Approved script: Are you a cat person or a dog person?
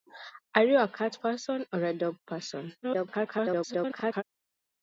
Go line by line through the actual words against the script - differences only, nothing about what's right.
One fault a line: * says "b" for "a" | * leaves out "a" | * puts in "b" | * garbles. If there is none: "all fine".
* garbles